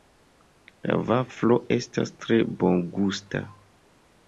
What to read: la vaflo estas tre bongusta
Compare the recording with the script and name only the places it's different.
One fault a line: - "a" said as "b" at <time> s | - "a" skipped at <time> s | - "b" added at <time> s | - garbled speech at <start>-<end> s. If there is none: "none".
none